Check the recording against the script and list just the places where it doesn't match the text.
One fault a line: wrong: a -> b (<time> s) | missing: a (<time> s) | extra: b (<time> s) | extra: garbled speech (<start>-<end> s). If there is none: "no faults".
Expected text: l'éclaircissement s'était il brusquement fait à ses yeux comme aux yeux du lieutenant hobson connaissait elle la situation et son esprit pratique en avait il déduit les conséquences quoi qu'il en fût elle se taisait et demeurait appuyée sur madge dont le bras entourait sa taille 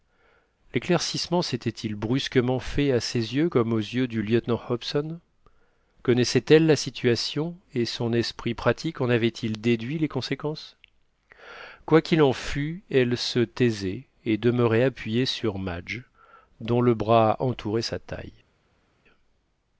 no faults